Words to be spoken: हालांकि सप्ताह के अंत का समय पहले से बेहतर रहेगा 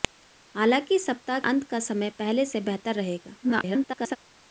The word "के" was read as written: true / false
false